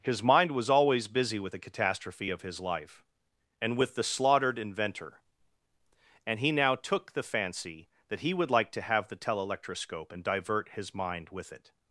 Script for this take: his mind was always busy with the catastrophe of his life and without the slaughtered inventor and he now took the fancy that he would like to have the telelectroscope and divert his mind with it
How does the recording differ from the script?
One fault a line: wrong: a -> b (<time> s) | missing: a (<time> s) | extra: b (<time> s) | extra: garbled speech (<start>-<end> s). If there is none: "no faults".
wrong: without -> with (3.8 s)